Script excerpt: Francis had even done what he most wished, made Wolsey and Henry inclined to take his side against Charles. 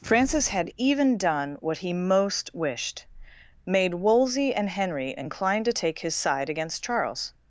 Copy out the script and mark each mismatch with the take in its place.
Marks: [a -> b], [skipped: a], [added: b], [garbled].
Francis had even done what he most wished, made Wolsey and Henry inclined to take his side against Charles.